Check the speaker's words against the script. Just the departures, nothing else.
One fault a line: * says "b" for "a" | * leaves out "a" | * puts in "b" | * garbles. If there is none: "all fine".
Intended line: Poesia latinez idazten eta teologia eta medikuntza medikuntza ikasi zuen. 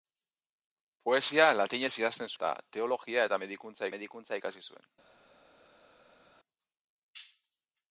all fine